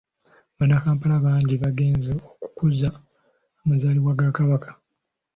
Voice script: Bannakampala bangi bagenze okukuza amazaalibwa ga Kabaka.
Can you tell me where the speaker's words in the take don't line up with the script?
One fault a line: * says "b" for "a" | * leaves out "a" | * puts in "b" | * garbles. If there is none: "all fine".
all fine